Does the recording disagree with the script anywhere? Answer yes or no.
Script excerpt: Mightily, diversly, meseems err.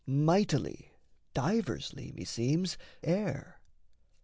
no